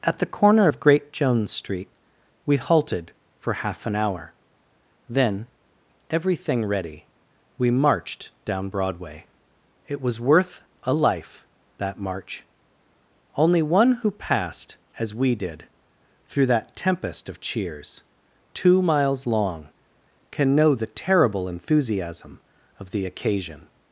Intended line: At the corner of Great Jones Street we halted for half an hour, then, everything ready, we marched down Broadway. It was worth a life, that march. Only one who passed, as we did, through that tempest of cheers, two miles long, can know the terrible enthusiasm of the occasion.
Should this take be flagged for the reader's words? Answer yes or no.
no